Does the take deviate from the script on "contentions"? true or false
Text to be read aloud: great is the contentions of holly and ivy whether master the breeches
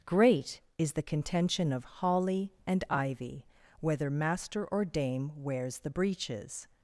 true